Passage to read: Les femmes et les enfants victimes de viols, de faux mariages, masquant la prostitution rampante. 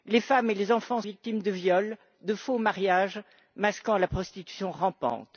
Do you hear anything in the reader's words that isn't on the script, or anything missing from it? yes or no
no